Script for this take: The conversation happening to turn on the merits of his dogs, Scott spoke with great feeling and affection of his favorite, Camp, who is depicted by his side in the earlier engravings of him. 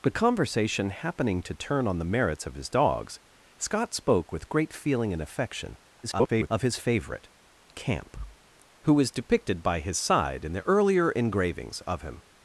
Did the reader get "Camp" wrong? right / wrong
right